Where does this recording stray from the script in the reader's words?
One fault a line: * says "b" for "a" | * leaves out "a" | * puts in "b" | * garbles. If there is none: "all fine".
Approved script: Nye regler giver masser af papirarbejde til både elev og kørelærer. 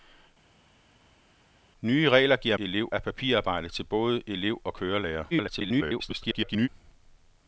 * says "elev" for "masser"
* garbles